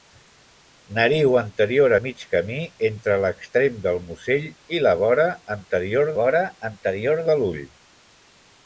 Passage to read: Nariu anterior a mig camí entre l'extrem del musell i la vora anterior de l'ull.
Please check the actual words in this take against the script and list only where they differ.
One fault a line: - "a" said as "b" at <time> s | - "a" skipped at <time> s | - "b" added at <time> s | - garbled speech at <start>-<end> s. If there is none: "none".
- "vora anterior" added at 6.2 s